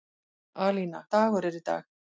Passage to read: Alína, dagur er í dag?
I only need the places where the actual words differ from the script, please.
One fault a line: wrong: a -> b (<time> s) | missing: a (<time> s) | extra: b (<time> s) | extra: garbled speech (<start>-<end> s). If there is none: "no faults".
no faults